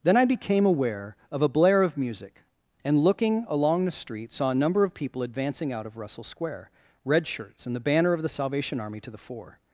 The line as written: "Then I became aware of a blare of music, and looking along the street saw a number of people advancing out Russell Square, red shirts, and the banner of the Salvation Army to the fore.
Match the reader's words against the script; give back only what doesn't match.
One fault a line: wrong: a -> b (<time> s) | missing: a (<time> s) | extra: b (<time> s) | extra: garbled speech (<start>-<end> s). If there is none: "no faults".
extra: of (5.9 s)